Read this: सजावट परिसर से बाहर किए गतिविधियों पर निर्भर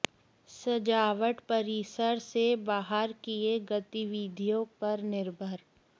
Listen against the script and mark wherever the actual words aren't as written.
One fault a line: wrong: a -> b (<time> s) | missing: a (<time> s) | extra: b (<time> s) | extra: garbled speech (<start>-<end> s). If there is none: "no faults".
no faults